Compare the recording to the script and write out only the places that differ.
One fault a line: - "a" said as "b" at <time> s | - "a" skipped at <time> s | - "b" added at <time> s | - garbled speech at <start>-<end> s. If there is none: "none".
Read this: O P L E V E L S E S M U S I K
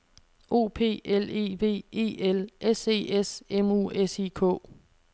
none